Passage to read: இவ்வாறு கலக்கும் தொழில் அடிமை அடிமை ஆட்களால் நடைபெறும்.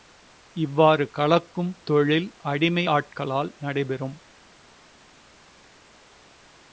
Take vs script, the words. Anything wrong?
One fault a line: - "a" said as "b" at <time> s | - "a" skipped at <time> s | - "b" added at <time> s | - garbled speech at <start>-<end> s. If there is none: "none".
- "அடிமை" skipped at 2.8 s